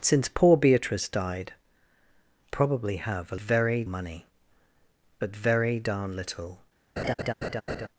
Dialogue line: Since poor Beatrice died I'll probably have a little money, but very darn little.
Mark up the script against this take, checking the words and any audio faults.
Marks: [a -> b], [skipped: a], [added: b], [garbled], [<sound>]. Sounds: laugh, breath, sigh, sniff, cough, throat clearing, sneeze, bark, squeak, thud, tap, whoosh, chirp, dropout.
Since poor Beatrice died [skipped: I'll] probably have a [little -> very] money, but very darn little. [laugh]